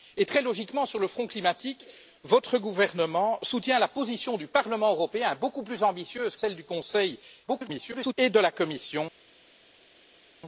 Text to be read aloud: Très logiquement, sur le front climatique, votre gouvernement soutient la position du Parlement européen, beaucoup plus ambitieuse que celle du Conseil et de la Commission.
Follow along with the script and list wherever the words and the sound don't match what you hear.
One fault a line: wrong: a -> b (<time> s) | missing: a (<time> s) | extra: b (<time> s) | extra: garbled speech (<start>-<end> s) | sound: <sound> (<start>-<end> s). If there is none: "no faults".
missing: que (6.3 s)
extra: garbled speech (7.5-8.1 s)